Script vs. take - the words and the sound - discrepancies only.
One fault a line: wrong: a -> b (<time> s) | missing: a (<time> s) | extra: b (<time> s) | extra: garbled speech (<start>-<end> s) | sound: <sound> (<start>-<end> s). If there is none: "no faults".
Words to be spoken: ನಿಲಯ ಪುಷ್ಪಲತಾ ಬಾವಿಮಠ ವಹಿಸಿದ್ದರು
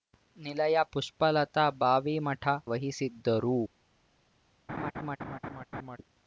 sound: laugh (4.7-6.0 s)